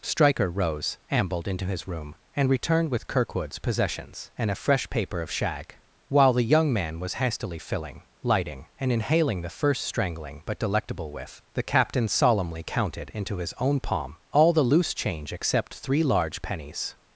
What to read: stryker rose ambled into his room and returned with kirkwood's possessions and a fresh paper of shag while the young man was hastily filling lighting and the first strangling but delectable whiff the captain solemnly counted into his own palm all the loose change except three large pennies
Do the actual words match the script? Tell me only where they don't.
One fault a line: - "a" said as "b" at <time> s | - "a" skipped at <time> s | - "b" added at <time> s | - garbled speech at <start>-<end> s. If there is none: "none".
- "inhaling" added at 8.9 s